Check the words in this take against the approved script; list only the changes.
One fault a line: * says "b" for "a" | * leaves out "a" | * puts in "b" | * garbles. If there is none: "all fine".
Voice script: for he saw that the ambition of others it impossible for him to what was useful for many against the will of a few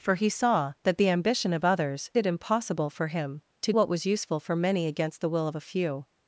all fine